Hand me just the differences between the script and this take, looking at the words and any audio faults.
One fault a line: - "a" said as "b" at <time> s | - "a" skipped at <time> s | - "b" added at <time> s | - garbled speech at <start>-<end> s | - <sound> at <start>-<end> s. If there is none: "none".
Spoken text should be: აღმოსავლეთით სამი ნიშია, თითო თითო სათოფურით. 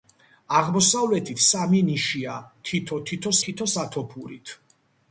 - "თითო" added at 3.5 s